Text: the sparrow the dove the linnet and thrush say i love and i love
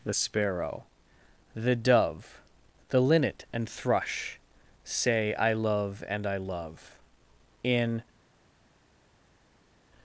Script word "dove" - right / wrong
right